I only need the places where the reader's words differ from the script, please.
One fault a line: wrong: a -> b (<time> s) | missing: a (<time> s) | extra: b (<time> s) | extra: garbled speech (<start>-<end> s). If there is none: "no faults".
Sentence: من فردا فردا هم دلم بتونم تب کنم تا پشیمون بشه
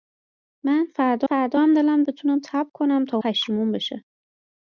no faults